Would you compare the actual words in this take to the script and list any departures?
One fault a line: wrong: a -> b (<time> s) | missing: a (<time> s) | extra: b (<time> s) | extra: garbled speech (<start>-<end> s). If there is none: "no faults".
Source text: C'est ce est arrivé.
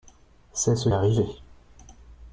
no faults